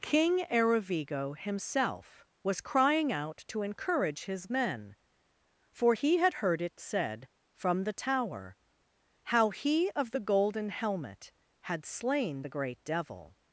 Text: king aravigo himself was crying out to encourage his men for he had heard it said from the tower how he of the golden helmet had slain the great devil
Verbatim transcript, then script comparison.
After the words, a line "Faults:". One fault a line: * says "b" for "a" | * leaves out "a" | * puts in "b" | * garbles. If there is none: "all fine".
king aravigo himself was crying out to encourage his men for he had heard it said from the tower how he of the golden helmet had slain the great devil
Faults:
all fine